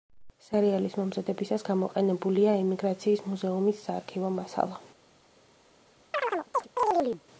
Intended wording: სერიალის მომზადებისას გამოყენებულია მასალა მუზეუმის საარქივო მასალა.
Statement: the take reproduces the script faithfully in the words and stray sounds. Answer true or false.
false